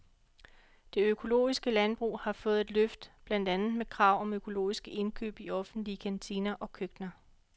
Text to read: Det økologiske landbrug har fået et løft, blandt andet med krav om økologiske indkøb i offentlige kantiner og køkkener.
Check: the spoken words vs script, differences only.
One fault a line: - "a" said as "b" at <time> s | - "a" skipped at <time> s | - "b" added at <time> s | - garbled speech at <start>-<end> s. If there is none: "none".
none